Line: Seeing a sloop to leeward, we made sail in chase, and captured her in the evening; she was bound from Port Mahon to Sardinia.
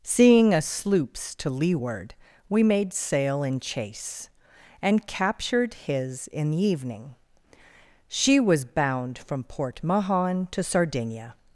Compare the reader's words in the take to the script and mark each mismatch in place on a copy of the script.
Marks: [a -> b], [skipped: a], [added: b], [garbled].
Seeing a [sloop -> sloops] to leeward, we made sail in chase, and captured [her -> his] in the evening; she was bound from Port Mahon to Sardinia.